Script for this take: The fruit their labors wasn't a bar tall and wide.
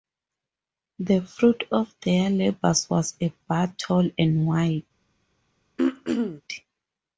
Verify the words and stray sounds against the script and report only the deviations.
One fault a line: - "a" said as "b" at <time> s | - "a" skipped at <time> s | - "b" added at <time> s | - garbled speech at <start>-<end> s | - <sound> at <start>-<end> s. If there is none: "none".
- "of" added at 1.7 s
- "wasn't" said as "was" at 2.9 s
- throat clearing at 5.8-6.4 s